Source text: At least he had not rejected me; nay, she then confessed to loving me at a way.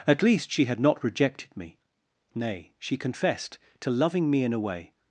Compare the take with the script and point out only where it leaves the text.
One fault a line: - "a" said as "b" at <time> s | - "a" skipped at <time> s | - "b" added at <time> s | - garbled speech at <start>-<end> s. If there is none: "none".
- "he" said as "she" at 0.5 s
- "then" skipped at 3.0 s
- "at" said as "in" at 4.4 s